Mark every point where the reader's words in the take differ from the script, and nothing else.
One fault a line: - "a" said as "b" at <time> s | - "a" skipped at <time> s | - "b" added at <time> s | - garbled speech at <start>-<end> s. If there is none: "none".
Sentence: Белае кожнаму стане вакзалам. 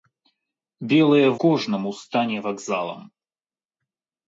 none